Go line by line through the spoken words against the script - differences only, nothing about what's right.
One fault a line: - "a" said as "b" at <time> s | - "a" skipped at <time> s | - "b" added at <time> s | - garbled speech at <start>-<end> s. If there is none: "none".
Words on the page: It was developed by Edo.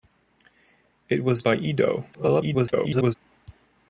- "developed" skipped at 1.4 s
- garbled speech at 2.1-3.2 s